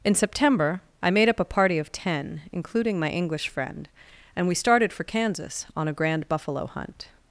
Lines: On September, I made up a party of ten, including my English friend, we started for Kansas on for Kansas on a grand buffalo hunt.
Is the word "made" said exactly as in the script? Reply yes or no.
yes